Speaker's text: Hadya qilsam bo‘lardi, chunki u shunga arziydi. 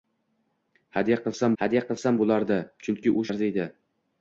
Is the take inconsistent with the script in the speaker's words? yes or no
yes